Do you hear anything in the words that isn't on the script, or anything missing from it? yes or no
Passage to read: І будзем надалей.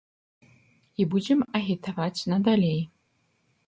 yes